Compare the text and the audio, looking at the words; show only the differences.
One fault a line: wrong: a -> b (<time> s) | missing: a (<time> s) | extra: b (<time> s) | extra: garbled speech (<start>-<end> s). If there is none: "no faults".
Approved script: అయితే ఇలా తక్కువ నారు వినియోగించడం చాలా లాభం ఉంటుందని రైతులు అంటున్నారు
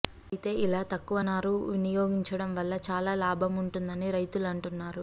extra: వల్ల (2.5 s)